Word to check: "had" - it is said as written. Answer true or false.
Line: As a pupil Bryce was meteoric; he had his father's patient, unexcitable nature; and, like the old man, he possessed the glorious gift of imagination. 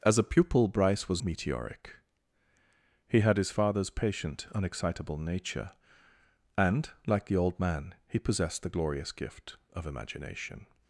true